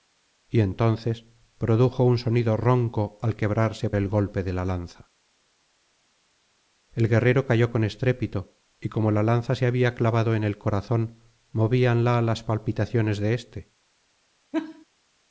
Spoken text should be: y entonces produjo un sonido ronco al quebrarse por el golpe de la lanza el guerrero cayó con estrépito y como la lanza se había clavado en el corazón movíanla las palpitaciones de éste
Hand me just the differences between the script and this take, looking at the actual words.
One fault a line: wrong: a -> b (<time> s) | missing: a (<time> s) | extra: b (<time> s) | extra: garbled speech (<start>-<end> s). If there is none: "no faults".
missing: por (3.9 s)